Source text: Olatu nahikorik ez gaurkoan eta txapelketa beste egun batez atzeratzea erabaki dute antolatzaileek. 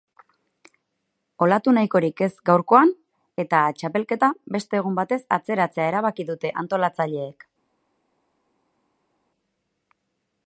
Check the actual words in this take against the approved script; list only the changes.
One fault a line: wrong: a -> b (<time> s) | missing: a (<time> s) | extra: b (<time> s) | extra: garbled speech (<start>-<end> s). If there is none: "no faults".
no faults